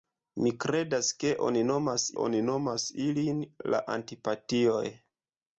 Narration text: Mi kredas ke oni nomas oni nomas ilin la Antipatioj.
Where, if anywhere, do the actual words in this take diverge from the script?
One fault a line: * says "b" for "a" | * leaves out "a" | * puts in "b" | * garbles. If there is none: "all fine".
all fine